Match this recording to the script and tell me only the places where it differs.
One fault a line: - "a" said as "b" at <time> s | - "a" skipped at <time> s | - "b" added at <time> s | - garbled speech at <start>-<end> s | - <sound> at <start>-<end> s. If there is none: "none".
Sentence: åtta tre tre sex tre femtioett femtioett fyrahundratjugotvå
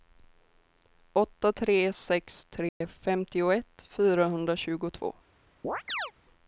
- "tre" skipped at 1.9 s
- dropout at 2.7-2.8 s
- "femtioett" skipped at 3.8 s
- chirp at 5.6-6.1 s